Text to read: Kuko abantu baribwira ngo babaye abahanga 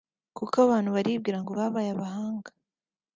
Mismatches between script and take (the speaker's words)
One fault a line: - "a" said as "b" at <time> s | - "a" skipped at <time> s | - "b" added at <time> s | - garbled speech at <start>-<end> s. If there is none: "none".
none